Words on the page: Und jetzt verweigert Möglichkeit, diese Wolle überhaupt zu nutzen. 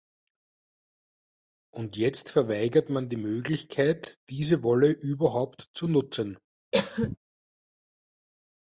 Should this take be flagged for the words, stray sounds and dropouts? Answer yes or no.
yes